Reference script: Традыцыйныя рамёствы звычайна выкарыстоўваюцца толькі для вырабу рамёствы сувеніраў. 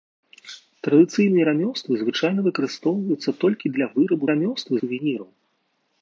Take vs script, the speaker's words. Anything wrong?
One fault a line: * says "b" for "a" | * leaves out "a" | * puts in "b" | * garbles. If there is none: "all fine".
all fine